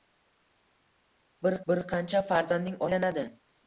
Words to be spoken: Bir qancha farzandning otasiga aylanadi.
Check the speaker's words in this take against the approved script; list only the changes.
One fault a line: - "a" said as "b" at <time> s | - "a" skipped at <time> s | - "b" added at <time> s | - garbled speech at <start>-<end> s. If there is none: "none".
- "bir" added at 1.7 s
- "otasiga" skipped at 2.8 s